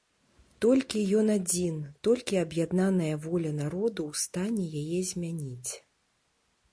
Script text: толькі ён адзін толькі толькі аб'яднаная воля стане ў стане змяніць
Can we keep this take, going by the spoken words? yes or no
no